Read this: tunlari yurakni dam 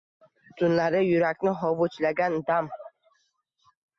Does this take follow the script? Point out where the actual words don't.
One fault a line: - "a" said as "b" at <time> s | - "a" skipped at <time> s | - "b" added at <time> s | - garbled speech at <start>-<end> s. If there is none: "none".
- "hovuchlagan" added at 1.6 s